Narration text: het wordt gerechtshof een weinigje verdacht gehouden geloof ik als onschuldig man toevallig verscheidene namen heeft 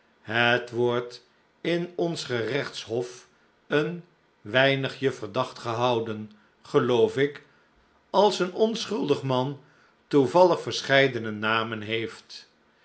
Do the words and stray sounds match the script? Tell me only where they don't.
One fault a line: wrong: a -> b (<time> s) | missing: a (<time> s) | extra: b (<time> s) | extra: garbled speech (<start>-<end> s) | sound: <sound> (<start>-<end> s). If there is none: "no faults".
extra: in ons (1.6 s)
extra: een (8.4 s)